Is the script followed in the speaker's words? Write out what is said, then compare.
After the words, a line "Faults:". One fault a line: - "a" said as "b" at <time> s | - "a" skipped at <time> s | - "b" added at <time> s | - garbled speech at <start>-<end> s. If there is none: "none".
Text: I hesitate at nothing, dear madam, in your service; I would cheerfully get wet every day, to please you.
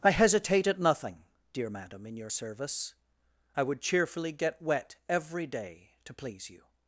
I hesitate at nothing, dear madam, in your service; I would cheerfully get wet every day, to please you.
Faults:
none